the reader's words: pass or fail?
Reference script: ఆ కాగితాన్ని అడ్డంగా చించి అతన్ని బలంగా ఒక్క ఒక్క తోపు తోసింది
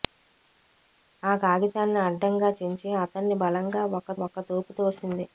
pass